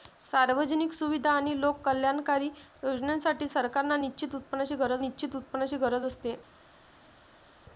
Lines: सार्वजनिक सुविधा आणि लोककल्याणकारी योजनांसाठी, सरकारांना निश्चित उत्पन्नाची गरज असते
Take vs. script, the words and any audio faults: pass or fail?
fail